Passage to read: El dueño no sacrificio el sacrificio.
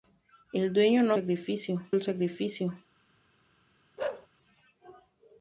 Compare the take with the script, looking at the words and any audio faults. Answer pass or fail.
fail